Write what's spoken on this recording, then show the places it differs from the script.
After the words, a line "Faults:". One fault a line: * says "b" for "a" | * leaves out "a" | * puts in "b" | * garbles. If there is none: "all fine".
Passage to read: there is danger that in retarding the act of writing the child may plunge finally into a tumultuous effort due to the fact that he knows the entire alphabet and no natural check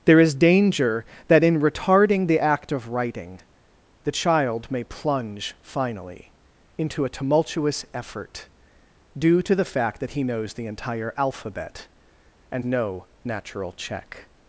there is danger that in retarding the act of writing the child may plunge finally into a tumultuous effort due to the fact that he knows the entire alphabet and no natural check
Faults:
all fine